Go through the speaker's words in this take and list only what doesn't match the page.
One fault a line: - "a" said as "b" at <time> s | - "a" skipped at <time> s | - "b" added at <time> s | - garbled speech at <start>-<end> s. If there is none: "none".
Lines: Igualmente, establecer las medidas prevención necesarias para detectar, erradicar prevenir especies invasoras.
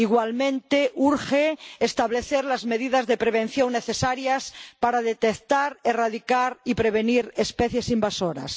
- "urge" added at 0.9 s
- "de" added at 3.0 s
- "y" added at 6.6 s